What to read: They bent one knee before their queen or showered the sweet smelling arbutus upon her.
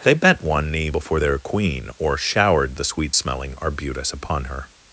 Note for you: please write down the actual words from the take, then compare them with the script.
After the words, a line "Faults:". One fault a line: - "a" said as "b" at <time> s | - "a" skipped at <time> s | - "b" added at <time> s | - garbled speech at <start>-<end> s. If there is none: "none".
They bent one knee before their queen or showered the sweet smelling arbutus upon her.
Faults:
none